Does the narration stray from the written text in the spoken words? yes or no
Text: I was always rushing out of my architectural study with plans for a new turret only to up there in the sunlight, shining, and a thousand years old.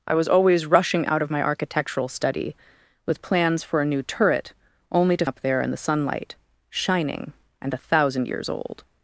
no